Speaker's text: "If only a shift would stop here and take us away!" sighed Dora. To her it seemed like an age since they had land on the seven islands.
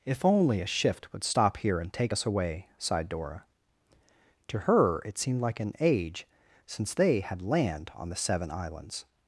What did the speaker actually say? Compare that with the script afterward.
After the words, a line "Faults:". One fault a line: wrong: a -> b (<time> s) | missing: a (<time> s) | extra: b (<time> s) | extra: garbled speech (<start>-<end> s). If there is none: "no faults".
"If only a shift would stop here and take us away!" sighed Dora. To her it seemed like an age since they had land on the seven islands.
Faults:
no faults